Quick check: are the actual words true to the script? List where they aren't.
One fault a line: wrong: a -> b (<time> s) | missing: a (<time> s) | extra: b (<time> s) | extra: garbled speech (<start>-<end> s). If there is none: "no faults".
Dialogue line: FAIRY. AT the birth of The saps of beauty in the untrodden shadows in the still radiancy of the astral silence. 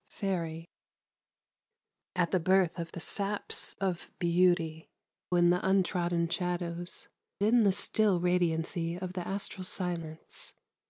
no faults